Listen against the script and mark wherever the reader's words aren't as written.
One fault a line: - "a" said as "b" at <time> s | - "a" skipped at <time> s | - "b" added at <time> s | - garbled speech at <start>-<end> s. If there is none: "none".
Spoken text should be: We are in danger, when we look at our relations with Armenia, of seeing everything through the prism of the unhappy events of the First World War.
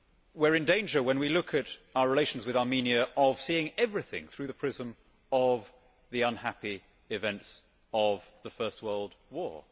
none